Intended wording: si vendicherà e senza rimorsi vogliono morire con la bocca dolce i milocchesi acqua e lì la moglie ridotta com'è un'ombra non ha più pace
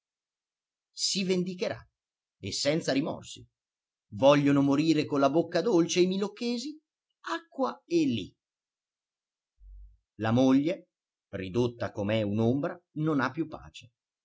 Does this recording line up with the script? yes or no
yes